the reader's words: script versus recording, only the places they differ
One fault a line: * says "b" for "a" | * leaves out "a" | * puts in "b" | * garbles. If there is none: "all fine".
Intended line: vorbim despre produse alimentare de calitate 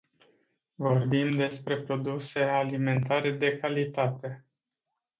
all fine